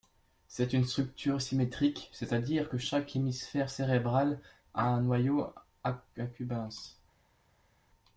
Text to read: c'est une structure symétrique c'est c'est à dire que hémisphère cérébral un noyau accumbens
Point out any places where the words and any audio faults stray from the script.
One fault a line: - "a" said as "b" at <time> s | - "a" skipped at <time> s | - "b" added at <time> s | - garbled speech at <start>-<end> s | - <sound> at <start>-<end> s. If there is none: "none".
- "c'est" skipped at 2.3 s
- "chaque" added at 2.8 s
- "a" added at 4.7 s